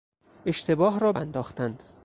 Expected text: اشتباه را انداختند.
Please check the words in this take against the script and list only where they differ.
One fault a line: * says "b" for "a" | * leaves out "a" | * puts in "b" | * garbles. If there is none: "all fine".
all fine